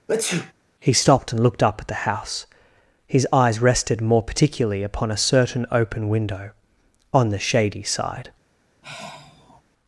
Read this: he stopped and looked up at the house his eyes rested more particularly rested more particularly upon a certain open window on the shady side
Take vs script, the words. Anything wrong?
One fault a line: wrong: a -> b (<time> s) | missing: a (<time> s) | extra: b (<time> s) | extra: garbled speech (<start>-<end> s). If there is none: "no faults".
missing: rested more particularly (4.8 s)